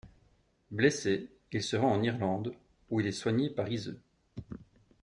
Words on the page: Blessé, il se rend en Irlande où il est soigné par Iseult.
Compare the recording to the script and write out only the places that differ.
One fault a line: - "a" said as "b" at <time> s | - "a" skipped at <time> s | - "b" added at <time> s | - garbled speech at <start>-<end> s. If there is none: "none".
none